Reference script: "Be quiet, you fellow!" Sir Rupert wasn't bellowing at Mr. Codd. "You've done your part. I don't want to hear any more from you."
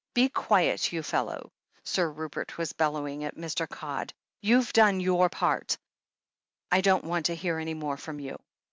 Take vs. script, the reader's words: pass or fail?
fail